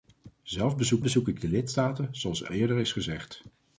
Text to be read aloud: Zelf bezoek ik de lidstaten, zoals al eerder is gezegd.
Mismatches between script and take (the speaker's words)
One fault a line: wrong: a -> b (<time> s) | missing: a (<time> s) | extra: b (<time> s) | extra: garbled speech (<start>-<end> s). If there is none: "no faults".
extra: bezoek (1.0 s)
missing: al (2.5 s)